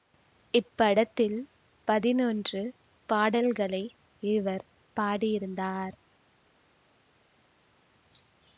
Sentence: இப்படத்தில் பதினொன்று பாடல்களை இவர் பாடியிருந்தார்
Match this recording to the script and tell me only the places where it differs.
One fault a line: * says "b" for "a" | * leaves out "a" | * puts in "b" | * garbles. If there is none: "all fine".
all fine